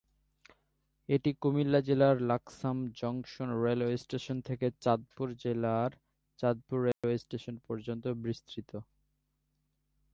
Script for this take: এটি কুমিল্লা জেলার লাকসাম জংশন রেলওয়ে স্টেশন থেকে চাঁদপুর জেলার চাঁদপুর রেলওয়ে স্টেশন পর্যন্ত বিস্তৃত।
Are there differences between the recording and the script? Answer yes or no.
no